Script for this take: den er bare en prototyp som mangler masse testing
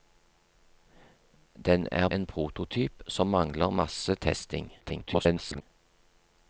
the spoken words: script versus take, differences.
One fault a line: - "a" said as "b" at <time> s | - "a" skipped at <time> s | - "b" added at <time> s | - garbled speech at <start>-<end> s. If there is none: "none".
- "bare" skipped at 2.1 s
- garbled speech at 4.8-5.6 s